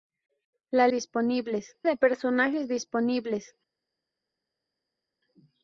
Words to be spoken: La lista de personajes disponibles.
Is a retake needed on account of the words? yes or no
yes